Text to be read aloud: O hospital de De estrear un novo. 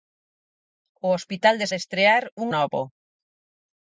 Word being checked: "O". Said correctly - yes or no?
yes